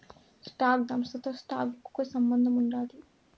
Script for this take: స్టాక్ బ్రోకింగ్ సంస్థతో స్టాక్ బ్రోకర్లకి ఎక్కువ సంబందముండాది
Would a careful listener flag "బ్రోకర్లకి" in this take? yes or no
yes